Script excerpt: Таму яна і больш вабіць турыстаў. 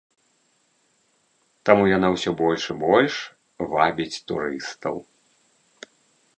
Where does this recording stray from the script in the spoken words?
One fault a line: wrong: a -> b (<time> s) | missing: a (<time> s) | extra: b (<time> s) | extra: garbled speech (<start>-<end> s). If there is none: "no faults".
extra: ўсё больш (2.1 s)